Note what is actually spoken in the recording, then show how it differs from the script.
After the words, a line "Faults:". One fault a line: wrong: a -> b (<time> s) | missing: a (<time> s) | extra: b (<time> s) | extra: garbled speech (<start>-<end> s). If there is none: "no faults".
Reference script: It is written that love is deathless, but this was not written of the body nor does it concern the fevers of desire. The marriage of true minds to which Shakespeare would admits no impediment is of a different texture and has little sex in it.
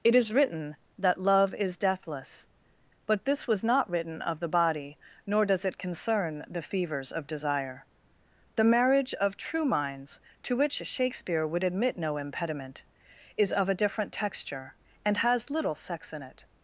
It is written that love is deathless, but this was not written of the body nor does it concern the fevers of desire. The marriage of true minds to which Shakespeare would admit no impediment is of a different texture and has little sex in it.
Faults:
wrong: admits -> admit (11.6 s)